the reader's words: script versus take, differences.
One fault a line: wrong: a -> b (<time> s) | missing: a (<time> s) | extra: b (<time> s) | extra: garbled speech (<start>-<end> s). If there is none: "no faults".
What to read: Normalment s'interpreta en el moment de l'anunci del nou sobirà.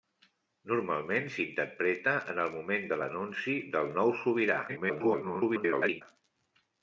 extra: garbled speech (4.7-6.0 s)